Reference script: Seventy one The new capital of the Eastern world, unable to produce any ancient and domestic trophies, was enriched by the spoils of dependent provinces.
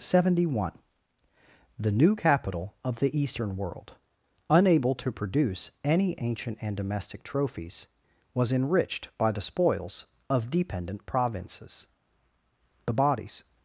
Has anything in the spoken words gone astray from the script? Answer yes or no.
yes